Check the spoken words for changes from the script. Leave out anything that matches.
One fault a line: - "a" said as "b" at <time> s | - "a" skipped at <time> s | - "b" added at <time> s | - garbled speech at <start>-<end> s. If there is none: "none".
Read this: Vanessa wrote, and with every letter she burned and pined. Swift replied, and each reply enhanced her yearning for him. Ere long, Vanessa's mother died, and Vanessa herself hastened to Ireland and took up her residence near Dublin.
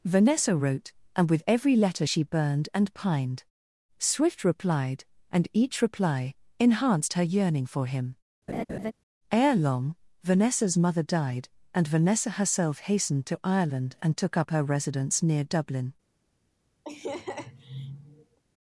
none